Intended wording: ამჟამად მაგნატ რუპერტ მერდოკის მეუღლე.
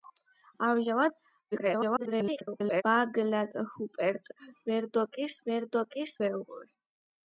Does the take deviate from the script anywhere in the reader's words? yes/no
yes